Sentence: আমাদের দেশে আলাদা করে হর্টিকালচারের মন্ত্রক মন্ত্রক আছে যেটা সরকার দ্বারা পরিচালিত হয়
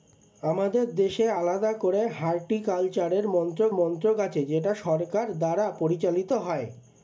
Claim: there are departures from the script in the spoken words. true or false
false